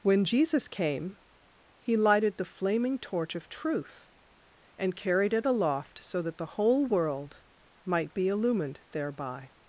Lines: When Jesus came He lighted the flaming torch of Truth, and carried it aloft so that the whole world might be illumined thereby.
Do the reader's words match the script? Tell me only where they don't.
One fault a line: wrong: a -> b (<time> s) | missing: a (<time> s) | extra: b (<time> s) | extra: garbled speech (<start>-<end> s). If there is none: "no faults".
no faults